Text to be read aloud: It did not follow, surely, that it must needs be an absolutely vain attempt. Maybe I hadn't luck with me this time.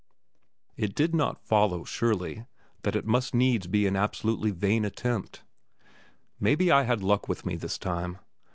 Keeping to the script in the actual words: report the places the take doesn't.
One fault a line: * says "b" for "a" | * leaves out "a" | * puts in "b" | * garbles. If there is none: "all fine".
* says "had" for "hadn't"